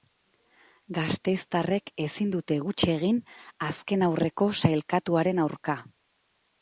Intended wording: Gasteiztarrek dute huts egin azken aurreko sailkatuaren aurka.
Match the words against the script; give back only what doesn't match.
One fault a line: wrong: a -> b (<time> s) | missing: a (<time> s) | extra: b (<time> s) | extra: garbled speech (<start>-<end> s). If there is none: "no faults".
extra: ezin (2.1 s)